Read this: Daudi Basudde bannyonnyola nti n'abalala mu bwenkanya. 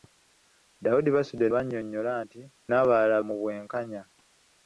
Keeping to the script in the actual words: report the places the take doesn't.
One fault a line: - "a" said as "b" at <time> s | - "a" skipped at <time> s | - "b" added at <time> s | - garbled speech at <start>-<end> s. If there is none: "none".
none